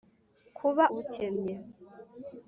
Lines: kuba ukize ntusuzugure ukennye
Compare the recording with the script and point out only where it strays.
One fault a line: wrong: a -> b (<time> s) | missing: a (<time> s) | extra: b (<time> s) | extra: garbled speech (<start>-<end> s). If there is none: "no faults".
missing: ukize ntusuzugure (0.8 s)